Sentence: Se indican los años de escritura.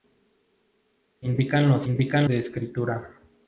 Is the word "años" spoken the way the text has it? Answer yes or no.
no